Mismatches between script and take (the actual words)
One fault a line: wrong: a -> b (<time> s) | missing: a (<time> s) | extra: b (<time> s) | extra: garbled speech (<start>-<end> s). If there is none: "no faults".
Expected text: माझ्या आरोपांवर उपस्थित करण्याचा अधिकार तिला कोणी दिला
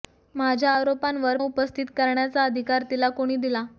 no faults